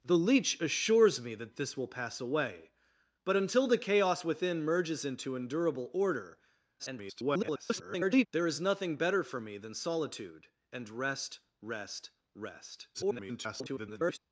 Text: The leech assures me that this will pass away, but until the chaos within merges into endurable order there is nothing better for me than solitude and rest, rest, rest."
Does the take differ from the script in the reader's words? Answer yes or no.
yes